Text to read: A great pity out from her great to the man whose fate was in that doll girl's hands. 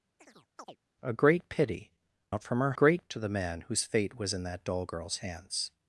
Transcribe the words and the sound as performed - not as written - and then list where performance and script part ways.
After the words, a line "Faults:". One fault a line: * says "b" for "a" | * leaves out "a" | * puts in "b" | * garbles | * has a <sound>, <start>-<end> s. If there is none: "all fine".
A great pity out from her great to the man whose fate was in that doll girl's hands.
Faults:
* has a chirp, 0.2-0.8 s